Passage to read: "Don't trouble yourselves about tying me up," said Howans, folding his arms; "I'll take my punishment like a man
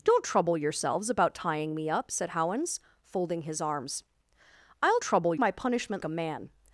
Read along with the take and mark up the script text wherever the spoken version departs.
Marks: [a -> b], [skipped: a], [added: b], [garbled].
"Don't trouble yourselves about tying me up," said Howans, folding his arms; "I'll [take -> trouble] my punishment [skipped: like] a man